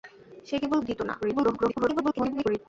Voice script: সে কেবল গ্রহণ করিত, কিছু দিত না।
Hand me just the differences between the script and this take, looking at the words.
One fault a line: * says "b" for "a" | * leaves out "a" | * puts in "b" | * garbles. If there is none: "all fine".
* leaves out "গ্রহণ করিত কিছু"
* garbles